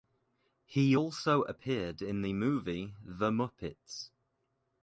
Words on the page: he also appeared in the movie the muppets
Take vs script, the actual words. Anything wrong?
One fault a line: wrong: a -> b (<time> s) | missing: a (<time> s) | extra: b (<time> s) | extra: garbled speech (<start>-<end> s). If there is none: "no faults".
no faults